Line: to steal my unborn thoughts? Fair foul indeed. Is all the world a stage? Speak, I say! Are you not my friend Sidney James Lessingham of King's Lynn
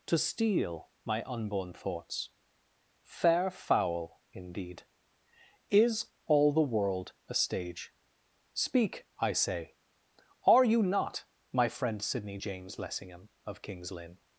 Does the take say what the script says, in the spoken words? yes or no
yes